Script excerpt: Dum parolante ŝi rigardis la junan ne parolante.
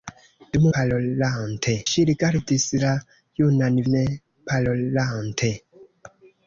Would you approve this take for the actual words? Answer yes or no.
yes